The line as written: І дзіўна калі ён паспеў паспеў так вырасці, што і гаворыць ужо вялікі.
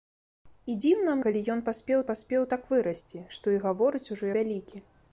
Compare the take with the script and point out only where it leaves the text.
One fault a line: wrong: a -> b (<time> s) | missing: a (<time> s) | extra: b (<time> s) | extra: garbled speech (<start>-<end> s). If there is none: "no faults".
no faults